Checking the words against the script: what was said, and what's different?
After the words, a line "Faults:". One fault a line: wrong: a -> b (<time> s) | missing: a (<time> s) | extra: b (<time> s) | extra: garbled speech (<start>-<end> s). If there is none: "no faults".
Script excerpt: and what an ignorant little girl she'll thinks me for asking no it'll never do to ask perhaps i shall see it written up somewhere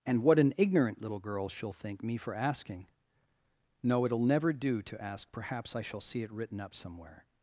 and what an ignorant little girl she'll think me for asking no it'll never do to ask perhaps i shall see it written up somewhere
Faults:
wrong: thinks -> think (1.7 s)